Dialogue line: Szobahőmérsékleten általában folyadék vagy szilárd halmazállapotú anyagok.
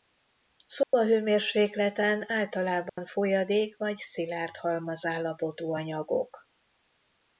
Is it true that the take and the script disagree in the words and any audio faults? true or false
true